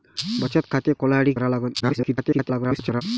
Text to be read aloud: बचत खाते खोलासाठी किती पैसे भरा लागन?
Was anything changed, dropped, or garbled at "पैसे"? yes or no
yes